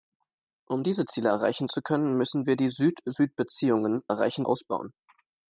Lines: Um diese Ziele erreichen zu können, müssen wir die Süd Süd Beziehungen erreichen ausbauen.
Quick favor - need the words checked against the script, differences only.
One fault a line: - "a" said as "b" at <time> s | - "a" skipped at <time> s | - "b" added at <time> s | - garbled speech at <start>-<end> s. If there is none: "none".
none